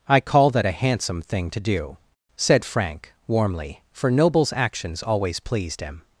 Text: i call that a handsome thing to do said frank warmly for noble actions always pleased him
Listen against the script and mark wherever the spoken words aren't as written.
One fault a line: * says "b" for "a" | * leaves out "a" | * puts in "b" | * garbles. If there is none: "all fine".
* says "nobles" for "noble"